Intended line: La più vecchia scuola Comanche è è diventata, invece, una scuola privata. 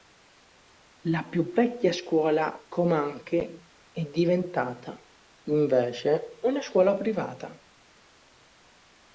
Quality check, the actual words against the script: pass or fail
fail